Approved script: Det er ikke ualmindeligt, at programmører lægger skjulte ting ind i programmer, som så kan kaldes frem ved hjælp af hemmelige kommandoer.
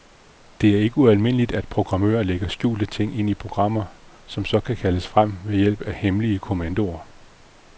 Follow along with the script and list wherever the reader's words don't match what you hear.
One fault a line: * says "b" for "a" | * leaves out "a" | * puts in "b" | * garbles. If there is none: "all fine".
all fine